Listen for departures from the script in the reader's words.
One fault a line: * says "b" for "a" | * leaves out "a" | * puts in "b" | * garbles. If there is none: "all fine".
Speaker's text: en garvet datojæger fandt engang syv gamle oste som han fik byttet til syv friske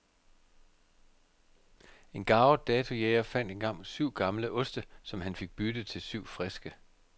all fine